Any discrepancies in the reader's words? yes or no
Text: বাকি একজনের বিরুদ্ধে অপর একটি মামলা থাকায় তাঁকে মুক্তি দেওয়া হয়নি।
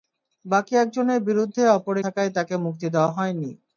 yes